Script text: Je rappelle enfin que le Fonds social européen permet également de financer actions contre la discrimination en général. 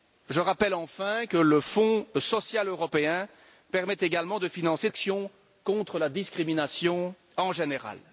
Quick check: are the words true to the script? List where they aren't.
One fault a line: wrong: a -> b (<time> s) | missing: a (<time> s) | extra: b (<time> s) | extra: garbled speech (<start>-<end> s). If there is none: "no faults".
no faults